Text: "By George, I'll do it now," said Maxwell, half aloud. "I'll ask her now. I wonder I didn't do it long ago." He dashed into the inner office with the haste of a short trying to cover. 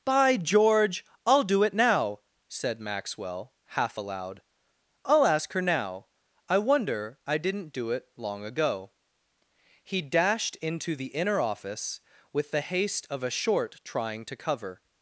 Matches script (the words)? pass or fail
pass